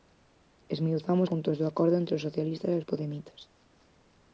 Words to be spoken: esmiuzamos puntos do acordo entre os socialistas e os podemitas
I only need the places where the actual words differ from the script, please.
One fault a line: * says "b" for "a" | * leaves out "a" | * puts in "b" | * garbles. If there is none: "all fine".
all fine